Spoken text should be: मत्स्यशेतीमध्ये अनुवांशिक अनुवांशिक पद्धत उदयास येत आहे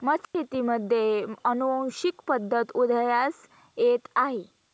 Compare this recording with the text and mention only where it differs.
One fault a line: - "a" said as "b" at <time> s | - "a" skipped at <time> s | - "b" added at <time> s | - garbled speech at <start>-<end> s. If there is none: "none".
- "अनुवांशिक" skipped at 2.2 s